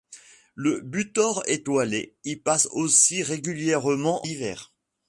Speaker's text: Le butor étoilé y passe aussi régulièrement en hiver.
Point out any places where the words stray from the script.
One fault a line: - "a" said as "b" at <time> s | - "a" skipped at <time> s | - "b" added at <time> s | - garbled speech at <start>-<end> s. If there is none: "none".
- "en" skipped at 4.3 s